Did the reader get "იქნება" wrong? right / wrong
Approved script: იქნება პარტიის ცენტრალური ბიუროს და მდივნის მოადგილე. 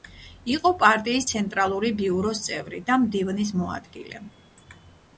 wrong